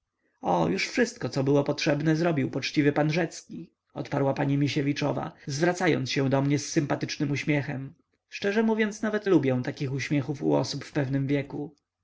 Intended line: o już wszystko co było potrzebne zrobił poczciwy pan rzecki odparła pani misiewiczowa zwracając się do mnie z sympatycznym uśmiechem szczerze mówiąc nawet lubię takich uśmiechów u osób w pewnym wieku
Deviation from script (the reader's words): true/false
false